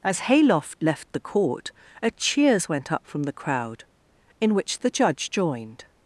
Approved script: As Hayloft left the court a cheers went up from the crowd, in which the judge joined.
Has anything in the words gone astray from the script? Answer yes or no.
no